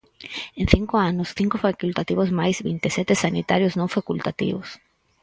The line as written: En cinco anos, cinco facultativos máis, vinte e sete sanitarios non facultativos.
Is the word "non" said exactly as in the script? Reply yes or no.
yes